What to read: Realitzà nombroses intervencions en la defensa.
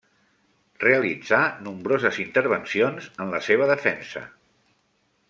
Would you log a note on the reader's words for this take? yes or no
yes